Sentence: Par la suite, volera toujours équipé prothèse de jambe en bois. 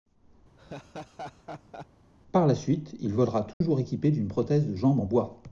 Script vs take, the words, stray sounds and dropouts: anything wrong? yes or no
yes